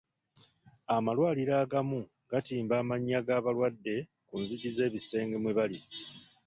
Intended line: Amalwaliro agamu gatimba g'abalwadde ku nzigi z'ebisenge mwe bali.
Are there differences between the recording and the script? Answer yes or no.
yes